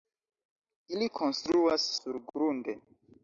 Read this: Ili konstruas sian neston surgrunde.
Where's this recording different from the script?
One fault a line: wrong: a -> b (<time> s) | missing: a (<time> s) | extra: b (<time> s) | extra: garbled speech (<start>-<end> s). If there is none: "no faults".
missing: sian neston (1.9 s)